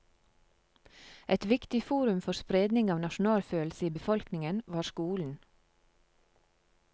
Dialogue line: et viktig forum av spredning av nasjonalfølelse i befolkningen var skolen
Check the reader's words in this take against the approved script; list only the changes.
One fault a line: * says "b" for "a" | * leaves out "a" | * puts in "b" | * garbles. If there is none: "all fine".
* says "for" for "av"